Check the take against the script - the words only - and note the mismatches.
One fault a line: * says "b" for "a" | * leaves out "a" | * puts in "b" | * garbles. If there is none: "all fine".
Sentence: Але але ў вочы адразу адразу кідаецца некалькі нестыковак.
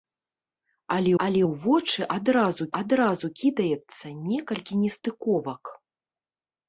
all fine